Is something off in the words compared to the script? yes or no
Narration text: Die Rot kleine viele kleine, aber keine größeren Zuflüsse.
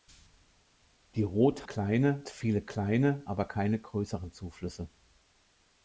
no